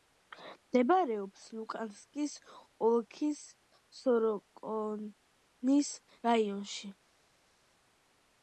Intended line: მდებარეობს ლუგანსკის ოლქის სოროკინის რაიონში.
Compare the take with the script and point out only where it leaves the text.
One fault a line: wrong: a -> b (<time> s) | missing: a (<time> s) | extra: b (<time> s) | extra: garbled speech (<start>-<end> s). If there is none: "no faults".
no faults